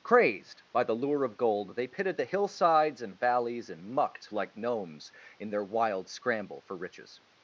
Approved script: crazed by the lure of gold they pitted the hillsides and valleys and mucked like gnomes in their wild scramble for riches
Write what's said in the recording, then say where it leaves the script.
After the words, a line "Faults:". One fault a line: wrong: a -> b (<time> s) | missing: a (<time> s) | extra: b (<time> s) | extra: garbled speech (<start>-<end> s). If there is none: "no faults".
crazed by the lure of gold they pitted the hillsides and valleys and mucked like gnomes in their wild scramble for riches
Faults:
no faults